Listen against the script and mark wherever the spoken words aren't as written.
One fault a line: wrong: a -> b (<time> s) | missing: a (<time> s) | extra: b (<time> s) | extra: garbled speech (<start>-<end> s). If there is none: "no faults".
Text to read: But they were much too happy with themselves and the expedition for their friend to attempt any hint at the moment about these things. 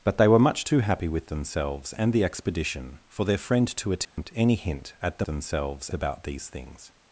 wrong: moment -> themselves (5.2 s)